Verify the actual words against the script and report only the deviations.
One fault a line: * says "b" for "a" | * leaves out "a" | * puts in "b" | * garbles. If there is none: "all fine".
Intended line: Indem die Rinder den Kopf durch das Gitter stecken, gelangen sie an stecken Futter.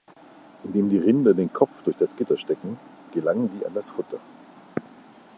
* says "das" for "stecken"